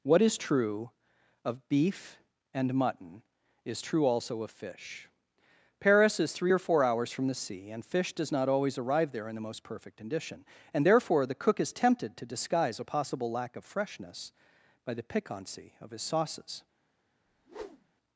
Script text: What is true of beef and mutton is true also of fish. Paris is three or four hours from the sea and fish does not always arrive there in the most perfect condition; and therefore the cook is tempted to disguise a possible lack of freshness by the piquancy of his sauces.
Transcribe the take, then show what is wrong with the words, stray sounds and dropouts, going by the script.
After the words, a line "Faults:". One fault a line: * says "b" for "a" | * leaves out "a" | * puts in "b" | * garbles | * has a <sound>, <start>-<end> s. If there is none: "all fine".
What is true of beef and mutton is true also of fish. Paris is three or four hours from the sea and fish does not always arrive there in the most perfect condition; and therefore the cook is tempted to disguise a possible lack of freshness by the piquancy of his sauces.
Faults:
* has a whoosh, 17.3-17.9 s